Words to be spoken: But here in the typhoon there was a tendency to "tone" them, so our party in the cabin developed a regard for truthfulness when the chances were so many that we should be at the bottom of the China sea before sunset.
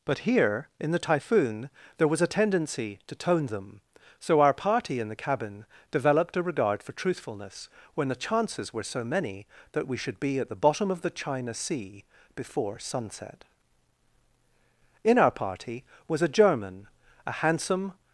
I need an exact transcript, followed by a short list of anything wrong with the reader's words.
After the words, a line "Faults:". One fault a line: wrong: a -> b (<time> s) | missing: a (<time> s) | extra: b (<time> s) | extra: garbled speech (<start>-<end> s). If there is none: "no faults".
But here in the typhoon there was a tendency to "tone" them, so our party in the cabin developed a regard for truthfulness when the chances were so many that we should be at the bottom of the China sea before sunset. In our party was a German, a handsome
Faults:
extra: In our party was a German a handsome (15.0 s)